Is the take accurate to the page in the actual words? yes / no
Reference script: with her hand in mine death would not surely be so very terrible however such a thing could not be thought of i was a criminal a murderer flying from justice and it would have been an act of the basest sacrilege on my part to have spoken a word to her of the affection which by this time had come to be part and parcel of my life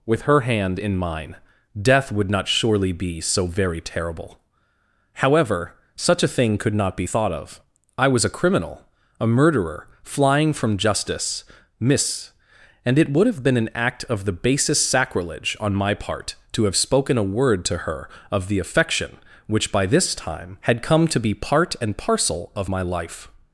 no